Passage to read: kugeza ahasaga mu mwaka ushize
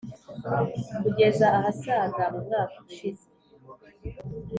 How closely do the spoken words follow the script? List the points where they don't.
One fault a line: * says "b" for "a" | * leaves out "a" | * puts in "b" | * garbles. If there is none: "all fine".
all fine